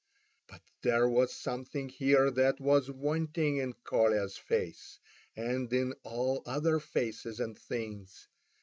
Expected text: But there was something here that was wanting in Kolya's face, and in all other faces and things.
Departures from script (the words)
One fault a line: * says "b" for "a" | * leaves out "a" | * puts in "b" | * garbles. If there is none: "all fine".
all fine